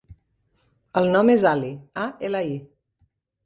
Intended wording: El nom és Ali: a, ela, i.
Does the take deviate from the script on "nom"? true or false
false